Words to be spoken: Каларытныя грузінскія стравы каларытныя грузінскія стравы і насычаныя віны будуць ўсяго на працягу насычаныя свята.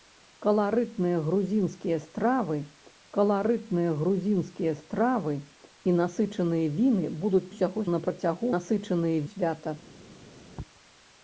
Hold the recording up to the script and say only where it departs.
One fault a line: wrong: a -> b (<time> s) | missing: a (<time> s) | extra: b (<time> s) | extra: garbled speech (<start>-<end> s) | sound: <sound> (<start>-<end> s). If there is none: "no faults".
no faults